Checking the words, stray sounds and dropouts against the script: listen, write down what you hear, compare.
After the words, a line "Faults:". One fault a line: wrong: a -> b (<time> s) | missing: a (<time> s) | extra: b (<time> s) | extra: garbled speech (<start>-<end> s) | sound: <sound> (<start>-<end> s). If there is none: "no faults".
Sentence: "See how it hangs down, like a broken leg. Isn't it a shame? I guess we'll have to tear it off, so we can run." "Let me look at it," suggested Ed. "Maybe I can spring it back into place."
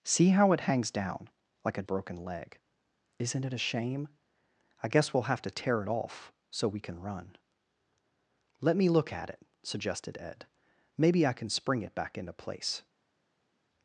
"See how it hangs down, like a broken leg. Isn't it a shame? I guess we'll have to tear it off, so we can run." "Let me look at it," suggested Ed. "Maybe I can spring it back into place."
Faults:
no faults